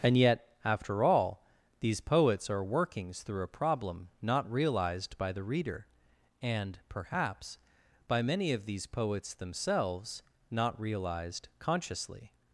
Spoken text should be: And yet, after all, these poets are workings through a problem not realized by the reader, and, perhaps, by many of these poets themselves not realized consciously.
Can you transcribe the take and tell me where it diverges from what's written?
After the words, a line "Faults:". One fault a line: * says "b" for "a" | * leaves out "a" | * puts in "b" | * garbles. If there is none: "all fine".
And yet, after all, these poets are workings through a problem not realized by the reader, and, perhaps, by many of these poets themselves not realized consciously.
Faults:
all fine